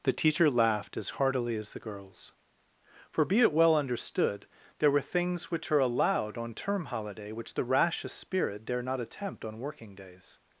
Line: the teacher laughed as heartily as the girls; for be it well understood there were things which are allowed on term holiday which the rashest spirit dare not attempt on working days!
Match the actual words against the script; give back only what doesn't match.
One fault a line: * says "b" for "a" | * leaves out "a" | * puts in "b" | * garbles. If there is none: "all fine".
all fine